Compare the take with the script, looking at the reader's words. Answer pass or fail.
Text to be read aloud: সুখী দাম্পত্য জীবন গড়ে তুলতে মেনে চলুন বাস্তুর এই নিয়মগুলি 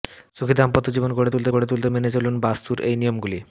fail